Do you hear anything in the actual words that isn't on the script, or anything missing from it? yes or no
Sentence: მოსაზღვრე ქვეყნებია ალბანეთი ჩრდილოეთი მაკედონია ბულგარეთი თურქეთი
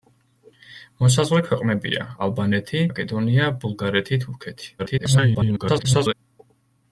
yes